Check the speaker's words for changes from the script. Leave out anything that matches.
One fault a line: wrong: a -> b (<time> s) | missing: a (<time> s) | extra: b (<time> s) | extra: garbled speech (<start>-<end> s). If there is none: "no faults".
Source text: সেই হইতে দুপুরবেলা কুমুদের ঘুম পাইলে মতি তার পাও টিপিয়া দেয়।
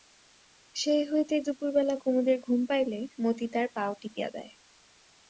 no faults